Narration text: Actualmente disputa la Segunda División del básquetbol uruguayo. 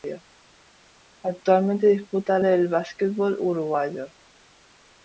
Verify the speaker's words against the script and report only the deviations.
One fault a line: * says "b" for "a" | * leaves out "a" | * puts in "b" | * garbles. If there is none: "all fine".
* leaves out "la Segunda División"